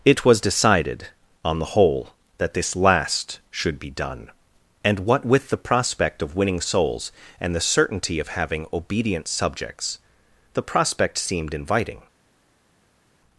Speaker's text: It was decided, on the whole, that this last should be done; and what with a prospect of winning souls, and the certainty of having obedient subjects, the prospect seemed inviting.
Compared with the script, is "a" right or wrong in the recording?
wrong